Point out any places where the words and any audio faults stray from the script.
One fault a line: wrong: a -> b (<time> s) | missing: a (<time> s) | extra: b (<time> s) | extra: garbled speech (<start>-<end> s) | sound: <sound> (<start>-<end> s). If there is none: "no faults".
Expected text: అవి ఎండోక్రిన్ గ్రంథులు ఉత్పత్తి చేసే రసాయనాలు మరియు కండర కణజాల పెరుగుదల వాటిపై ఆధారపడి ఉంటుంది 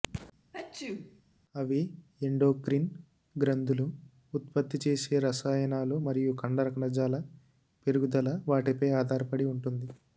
sound: sneeze (0.5-1.2 s)